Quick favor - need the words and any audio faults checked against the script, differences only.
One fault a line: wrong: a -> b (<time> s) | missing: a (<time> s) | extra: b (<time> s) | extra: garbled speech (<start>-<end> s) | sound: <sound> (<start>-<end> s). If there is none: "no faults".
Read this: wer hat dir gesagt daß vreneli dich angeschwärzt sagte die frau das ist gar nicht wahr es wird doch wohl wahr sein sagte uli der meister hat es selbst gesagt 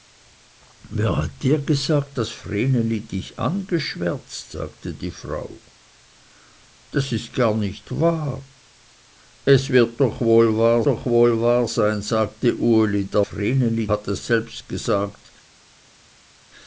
extra: doch wohl wahr (10.9 s)
wrong: meister -> vreneli (13.2 s)